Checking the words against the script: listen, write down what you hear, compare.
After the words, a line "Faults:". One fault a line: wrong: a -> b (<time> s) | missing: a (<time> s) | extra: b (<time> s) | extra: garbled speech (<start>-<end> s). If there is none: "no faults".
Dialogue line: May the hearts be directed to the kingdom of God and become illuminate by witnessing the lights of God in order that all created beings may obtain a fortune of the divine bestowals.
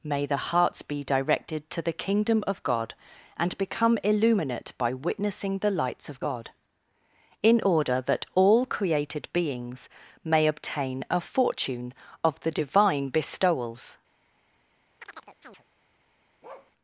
May the hearts be directed to the kingdom of God and become illuminate by witnessing the lights of God in order that all created beings may obtain a fortune of the divine bestowals.
Faults:
no faults